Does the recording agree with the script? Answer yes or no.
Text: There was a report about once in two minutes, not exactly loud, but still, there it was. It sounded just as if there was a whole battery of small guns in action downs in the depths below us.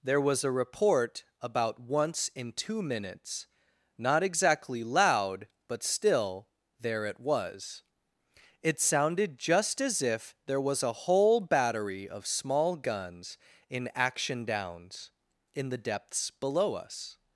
yes